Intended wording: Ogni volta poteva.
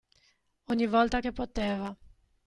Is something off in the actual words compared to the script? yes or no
yes